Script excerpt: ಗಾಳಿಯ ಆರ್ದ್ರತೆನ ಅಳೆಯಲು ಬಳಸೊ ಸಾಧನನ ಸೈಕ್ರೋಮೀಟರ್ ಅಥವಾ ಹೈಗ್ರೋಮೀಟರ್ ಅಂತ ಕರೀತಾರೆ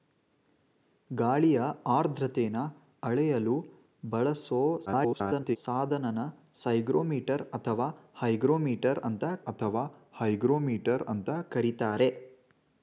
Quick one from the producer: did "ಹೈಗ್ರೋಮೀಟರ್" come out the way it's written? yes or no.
yes